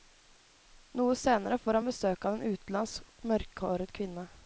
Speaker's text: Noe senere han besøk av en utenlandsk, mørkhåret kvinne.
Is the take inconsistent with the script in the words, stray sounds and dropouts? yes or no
yes